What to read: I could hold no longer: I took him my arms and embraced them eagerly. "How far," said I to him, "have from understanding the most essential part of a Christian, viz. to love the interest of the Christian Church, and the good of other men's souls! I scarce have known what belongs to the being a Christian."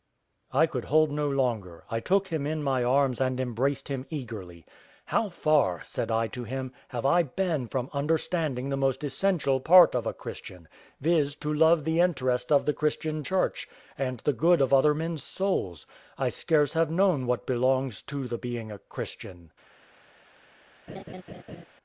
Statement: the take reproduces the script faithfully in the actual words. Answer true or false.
false